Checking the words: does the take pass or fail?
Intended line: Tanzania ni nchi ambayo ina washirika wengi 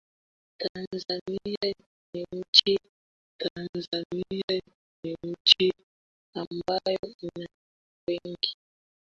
fail